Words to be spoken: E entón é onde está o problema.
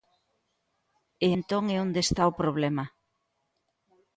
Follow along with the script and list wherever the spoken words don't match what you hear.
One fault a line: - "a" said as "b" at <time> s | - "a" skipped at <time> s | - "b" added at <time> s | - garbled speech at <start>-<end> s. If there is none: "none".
none